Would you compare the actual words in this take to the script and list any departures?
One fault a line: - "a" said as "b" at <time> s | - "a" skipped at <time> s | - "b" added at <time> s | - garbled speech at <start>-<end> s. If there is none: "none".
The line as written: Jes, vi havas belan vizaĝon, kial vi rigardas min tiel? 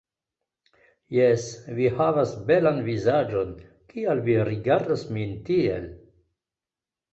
none